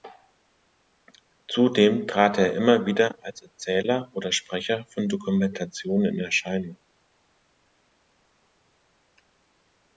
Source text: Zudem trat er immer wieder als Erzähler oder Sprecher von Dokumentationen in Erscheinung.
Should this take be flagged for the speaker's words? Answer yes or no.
no